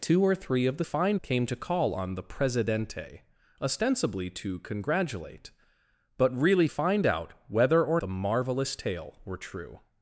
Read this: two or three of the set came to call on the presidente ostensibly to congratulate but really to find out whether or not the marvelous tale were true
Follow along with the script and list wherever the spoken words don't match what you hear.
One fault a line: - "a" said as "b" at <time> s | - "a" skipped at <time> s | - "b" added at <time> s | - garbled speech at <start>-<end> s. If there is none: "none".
- "set" said as "find" at 0.8 s
- "to" skipped at 6.7 s
- "not" skipped at 8.0 s